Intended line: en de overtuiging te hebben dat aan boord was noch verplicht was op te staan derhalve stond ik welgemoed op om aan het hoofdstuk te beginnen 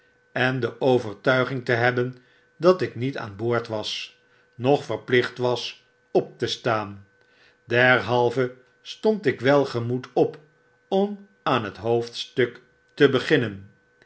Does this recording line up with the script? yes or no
no